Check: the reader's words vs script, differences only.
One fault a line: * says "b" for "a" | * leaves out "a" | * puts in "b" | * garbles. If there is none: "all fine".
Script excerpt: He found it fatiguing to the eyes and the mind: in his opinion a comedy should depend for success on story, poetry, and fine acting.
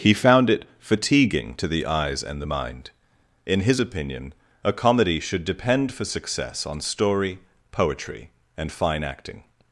all fine